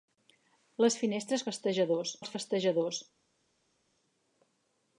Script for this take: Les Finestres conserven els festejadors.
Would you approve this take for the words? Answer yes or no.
no